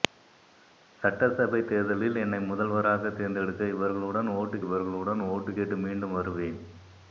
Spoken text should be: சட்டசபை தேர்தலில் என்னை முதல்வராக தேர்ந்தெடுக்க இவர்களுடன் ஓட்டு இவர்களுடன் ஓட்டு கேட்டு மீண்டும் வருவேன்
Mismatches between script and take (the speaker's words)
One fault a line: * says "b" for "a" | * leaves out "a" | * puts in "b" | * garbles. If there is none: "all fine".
all fine